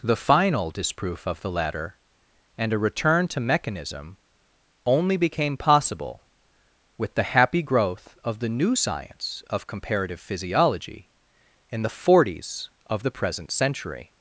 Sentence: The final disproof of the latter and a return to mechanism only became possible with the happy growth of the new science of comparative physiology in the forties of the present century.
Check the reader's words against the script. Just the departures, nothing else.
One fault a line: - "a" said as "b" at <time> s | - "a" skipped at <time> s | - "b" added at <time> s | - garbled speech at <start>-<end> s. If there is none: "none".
none